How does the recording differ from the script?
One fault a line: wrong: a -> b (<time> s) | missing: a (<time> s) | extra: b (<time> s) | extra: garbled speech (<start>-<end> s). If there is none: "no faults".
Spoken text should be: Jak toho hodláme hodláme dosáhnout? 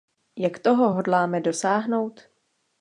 missing: hodláme (1.4 s)